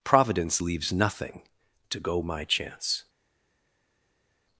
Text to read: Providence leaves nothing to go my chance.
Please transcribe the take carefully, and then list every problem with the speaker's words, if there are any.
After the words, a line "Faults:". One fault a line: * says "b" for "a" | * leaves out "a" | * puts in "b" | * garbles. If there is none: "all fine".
Providence leaves nothing to go my chance.
Faults:
all fine